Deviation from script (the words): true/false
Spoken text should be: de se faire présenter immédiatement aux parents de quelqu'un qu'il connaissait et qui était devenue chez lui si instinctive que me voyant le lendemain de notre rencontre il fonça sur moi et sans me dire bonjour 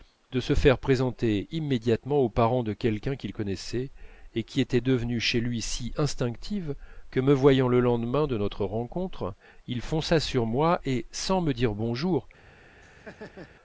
false